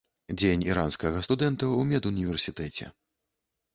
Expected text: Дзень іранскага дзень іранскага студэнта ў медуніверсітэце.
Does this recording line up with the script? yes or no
no